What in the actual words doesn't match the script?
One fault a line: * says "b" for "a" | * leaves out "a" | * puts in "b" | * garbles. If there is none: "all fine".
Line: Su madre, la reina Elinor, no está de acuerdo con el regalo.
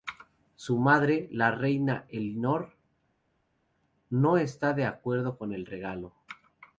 all fine